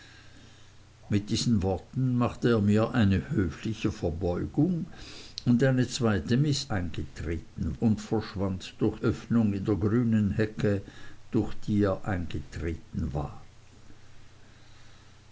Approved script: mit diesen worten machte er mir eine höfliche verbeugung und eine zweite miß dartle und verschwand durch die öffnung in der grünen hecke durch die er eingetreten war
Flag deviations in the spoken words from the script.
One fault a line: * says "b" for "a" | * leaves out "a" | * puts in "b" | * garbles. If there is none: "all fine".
* says "eingetreten" for "dartle"
* leaves out "die"